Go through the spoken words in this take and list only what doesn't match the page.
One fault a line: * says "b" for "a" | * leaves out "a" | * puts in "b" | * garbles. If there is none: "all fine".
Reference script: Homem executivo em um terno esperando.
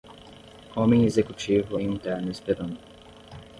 all fine